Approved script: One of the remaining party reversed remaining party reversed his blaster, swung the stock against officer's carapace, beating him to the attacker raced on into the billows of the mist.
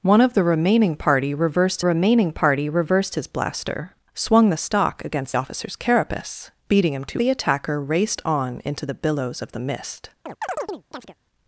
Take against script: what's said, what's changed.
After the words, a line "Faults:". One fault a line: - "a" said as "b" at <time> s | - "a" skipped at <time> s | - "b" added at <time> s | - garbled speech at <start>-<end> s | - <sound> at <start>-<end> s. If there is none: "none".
One of the remaining party reversed remaining party reversed his blaster, swung the stock against officer's carapace, beating him to the attacker raced on into the billows of the mist.
Faults:
- chirp at 10.3-11.2 s